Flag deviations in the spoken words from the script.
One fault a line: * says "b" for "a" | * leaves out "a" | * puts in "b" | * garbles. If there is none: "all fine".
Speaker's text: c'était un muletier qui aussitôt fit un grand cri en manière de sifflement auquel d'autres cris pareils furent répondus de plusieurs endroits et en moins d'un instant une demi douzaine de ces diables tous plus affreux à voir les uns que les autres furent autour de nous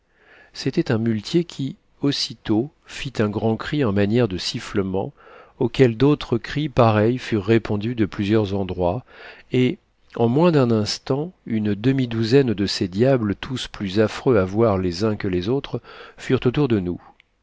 all fine